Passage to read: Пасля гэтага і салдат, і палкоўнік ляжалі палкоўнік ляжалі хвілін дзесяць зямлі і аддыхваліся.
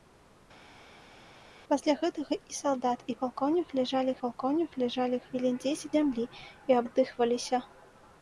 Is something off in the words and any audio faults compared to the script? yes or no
no